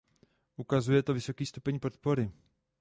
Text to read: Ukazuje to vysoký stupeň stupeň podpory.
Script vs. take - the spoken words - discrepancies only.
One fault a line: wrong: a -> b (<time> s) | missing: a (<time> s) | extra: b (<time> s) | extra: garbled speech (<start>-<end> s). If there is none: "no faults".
missing: stupeň (1.8 s)